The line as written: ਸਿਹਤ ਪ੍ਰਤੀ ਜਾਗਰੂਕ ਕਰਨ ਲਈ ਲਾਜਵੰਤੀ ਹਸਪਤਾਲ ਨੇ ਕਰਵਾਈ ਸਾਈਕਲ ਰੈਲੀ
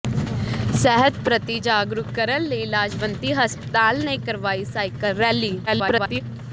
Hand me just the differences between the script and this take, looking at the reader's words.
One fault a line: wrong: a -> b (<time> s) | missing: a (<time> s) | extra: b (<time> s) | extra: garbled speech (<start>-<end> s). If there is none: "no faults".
extra: garbled speech (5.7-6.2 s)